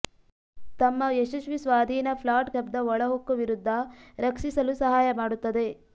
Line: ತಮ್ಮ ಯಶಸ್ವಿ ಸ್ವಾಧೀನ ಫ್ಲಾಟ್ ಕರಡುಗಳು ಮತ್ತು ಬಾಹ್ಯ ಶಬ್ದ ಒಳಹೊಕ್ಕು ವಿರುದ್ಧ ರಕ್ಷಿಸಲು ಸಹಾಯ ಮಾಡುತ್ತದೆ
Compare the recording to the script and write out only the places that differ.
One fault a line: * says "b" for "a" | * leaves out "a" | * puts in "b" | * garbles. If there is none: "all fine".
* leaves out "ಕರಡುಗಳು ಮತ್ತು ಬಾಹ್ಯ"